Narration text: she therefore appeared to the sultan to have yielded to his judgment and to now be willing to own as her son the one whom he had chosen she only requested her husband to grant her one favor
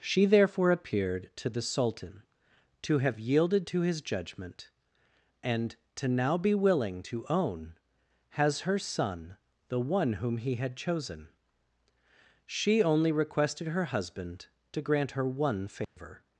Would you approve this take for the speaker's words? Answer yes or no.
no